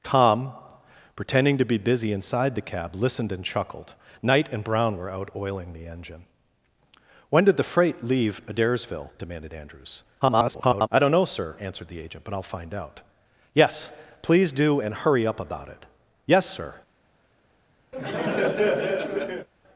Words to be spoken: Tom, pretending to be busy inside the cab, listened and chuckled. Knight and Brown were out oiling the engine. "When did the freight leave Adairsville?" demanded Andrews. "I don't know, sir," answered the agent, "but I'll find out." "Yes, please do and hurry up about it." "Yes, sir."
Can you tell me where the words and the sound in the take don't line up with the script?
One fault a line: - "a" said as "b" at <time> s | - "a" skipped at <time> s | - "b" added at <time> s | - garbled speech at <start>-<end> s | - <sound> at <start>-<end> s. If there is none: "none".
- garbled speech at 10.2-10.9 s
- laugh at 17.9-19.5 s